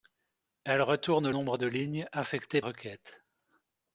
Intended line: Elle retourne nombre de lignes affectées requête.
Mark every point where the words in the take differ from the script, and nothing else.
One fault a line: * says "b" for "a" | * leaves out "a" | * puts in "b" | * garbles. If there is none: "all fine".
all fine